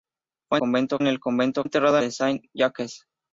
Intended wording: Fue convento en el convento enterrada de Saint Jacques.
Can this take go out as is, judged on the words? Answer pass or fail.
pass